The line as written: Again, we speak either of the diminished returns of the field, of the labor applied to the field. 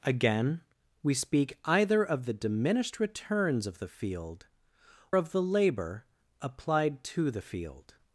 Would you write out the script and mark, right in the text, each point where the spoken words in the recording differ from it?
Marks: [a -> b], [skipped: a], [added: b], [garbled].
Again, we speak either of the diminished returns of the field, of the labor applied to the field.